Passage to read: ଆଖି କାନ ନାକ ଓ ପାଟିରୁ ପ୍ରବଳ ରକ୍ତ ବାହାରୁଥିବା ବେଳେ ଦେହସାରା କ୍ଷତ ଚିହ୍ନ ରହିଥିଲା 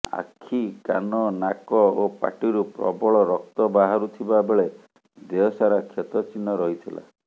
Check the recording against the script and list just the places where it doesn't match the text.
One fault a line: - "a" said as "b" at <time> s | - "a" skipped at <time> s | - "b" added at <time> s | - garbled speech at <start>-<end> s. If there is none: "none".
none